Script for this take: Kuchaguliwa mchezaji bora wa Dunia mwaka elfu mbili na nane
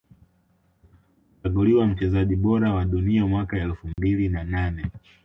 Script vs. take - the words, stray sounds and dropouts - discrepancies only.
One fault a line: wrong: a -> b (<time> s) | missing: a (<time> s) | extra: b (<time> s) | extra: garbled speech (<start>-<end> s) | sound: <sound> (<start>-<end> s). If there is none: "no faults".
sound: dropout (3.9-4.0 s)